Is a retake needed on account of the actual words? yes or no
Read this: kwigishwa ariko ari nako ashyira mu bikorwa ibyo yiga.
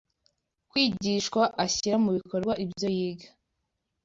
yes